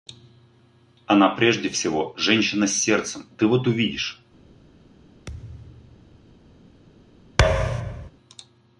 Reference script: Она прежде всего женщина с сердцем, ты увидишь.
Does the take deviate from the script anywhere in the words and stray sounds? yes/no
yes